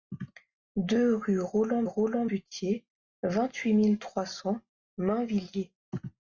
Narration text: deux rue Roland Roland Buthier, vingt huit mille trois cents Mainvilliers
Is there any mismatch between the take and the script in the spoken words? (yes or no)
no